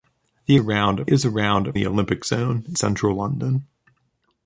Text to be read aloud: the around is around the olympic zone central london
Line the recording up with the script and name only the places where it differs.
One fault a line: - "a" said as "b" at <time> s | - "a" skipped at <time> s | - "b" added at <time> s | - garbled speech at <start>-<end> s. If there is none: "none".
none